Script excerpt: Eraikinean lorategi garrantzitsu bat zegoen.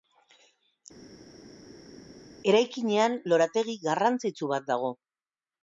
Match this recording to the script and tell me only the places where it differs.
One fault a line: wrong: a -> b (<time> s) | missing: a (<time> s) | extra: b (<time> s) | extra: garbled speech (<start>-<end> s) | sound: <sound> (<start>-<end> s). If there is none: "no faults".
wrong: zegoen -> dago (4.7 s)